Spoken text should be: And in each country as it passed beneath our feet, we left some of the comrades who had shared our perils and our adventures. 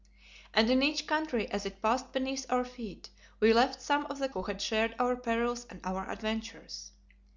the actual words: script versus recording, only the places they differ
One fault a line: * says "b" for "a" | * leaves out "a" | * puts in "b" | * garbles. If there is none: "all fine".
* leaves out "comrades"